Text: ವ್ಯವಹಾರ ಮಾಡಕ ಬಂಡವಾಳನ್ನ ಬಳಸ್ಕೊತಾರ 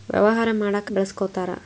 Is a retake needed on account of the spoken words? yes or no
yes